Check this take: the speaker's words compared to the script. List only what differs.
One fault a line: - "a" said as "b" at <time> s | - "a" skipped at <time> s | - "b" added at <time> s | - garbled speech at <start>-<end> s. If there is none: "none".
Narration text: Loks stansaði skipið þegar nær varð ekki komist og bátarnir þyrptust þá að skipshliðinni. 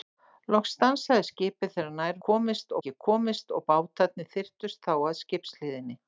- "varð" said as "komist" at 2.3 s